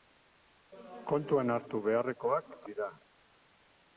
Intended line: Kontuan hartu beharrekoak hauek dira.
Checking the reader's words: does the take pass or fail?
fail